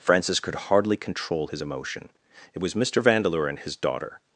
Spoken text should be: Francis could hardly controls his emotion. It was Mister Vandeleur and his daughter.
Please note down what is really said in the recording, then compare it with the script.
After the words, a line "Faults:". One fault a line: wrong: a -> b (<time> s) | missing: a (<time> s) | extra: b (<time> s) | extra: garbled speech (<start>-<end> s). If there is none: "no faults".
Francis could hardly control his emotion. It was Mister Vandeleur and his daughter.
Faults:
wrong: controls -> control (1.0 s)